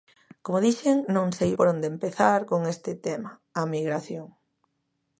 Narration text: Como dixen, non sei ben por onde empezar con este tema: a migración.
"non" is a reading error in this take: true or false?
false